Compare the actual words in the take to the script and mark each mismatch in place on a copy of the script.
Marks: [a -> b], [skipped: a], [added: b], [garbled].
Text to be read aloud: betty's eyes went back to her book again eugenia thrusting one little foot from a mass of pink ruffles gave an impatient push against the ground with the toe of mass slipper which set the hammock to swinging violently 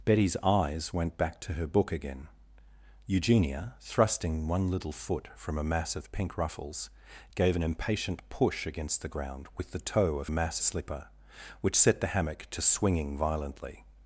betty's eyes went back to her book again eugenia thrusting one little foot from a mass of pink ruffles gave an impatient push against the ground with the toe of mass slipper which set the hammock to swinging violently